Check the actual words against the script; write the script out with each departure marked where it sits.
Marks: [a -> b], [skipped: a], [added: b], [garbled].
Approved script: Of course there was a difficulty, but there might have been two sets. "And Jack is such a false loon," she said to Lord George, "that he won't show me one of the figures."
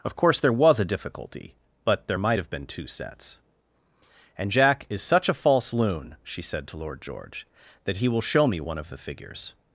Of course there was a difficulty, but there might have been two sets. "And Jack is such a false loon," she said to Lord George, "that he [won't -> will] show me one of the figures."